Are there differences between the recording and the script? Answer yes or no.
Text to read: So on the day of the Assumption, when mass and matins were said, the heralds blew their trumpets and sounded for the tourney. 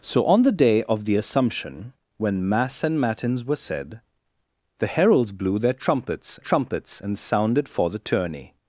yes